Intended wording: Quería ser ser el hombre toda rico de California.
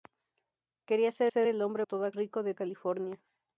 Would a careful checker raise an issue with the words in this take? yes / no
no